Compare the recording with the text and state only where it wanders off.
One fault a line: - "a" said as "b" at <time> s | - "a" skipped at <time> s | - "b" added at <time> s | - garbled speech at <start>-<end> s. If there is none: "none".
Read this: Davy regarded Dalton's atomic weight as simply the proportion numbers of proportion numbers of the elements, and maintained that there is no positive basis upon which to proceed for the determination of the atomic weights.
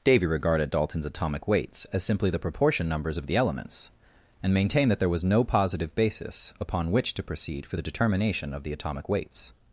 - "weight" said as "weights" at 1.5 s
- "proportion numbers of" skipped at 3.3 s
- "is" said as "was" at 5.1 s